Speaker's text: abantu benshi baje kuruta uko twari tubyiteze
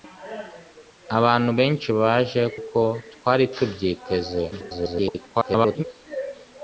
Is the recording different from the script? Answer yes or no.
yes